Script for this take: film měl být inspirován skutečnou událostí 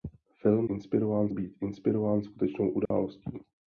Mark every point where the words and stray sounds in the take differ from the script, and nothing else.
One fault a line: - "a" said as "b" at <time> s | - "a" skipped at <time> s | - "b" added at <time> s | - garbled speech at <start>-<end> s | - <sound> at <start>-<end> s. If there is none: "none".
- "měl" said as "inspirován" at 0.7 s
- dropout at 2.9-2.9 s